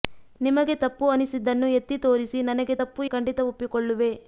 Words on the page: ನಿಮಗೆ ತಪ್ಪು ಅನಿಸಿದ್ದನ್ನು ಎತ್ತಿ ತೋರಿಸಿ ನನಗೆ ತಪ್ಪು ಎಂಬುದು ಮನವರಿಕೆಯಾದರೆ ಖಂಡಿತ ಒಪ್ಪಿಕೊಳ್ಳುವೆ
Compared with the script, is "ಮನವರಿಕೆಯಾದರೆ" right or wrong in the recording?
wrong